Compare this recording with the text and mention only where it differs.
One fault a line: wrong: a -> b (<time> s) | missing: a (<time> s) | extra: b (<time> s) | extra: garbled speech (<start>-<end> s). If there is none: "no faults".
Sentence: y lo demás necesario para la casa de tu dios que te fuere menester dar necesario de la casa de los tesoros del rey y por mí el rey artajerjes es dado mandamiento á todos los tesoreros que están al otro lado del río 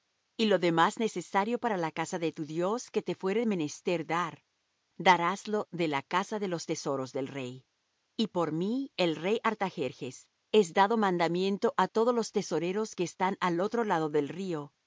wrong: necesario -> daráslo (5.0 s)